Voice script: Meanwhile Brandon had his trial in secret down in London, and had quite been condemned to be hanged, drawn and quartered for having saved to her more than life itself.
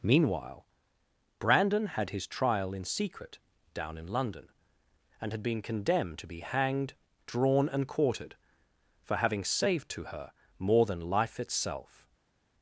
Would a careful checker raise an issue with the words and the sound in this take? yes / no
yes